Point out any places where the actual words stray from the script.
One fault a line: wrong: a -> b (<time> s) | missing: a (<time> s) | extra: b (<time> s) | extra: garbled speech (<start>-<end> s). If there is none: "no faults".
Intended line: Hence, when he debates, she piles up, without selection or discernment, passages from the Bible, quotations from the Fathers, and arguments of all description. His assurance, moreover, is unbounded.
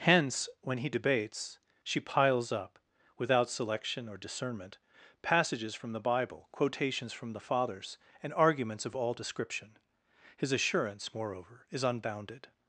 no faults